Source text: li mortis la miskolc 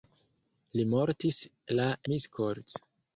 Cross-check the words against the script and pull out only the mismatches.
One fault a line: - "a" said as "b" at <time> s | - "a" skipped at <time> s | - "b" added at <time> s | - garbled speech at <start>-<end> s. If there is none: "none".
none